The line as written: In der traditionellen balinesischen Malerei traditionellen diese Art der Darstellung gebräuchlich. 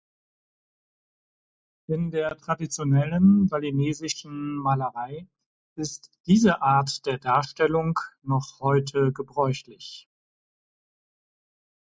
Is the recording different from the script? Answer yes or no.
yes